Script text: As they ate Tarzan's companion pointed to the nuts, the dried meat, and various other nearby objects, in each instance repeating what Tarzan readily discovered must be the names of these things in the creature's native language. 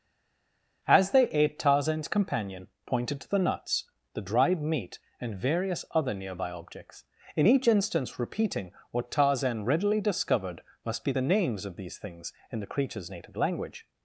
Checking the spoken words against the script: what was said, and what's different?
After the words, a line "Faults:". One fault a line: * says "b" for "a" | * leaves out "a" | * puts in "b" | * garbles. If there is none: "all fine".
As they ate Tarzan's companion pointed to the nuts, the dried meat, and various other nearby objects, in each instance repeating what Tarzan readily discovered must be the names of these things in the creature's native language.
Faults:
all fine